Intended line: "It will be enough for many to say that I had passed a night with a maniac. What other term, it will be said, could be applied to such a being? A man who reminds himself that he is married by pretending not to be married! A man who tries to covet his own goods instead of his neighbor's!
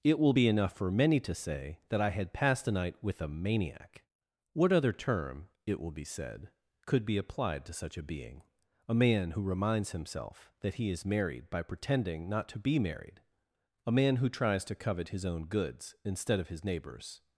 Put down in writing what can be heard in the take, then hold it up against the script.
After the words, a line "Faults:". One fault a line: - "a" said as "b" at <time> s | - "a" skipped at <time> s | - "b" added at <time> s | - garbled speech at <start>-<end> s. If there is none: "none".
"It will be enough for many to say that I had passed a night with a maniac. What other term, it will be said, could be applied to such a being? A man who reminds himself that he is married by pretending not to be married! A man who tries to covet his own goods instead of his neighbor's!
Faults:
none